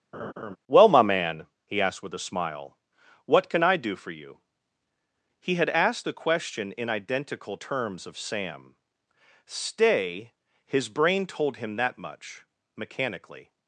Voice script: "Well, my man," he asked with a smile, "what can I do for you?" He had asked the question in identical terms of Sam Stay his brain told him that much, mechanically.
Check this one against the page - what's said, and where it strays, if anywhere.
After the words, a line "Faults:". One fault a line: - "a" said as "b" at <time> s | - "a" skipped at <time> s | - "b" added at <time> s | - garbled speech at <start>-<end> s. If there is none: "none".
"Well, my man," he asked with a smile, "what can I do for you?" He had asked the question in identical terms of Sam Stay his brain told him that much, mechanically.
Faults:
none